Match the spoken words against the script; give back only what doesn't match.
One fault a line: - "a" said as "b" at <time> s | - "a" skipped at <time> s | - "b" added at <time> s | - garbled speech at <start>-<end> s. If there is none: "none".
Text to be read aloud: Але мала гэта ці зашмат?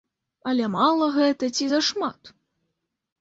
none